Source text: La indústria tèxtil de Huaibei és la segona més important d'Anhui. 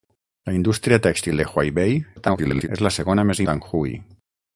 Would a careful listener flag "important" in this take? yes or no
yes